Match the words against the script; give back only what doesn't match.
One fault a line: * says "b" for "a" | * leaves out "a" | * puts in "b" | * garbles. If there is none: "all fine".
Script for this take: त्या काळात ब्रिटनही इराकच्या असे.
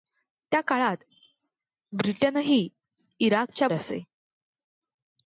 all fine